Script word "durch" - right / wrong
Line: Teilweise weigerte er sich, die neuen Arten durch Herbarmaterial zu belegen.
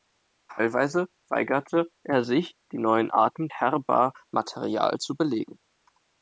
wrong